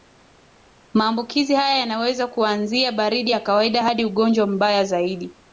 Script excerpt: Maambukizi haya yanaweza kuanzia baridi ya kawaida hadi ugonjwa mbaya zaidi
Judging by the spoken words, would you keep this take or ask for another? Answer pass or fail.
pass